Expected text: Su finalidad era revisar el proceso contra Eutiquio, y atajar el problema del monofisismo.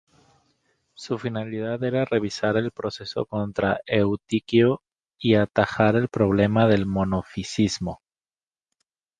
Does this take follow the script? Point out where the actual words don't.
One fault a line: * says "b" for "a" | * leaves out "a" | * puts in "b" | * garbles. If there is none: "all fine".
all fine